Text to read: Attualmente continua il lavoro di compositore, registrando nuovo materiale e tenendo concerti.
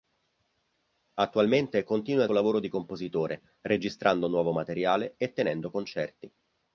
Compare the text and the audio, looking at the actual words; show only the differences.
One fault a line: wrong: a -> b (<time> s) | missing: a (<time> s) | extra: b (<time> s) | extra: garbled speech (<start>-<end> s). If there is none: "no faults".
no faults